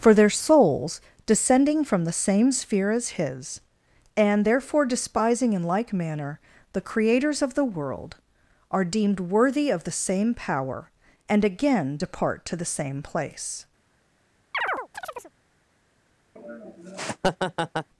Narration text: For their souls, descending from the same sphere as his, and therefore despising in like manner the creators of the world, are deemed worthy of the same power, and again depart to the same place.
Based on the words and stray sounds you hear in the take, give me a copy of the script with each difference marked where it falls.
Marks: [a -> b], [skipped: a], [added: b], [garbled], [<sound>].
For their souls, descending from the same sphere as his, and therefore despising in like manner the creators of the world, are deemed worthy of the same power, and again depart to the same place. [chirp] [laugh]